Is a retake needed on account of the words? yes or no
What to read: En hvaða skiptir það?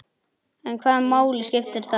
yes